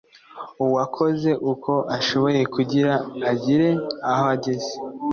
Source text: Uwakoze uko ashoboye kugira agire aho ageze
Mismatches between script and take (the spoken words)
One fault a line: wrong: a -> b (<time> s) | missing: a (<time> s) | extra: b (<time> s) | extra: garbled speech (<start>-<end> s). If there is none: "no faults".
no faults